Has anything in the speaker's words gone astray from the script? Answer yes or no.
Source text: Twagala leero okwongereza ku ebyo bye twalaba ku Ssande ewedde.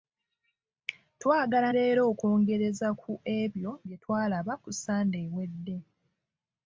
no